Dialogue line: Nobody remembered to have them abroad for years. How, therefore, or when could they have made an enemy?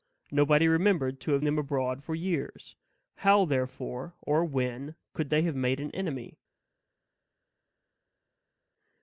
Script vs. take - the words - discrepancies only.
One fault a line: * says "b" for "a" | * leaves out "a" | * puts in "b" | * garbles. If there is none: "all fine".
all fine